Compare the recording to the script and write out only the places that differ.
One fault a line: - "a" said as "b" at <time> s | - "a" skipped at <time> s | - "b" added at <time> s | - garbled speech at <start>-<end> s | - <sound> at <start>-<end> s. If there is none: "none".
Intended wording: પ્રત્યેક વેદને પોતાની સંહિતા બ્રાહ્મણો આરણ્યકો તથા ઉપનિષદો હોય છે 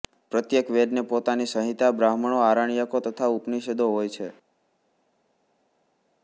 none